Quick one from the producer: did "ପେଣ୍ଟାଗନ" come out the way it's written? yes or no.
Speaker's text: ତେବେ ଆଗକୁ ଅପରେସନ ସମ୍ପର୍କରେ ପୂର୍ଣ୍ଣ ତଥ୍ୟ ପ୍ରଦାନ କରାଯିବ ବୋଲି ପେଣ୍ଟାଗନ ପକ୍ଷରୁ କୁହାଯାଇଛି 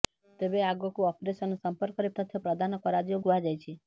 no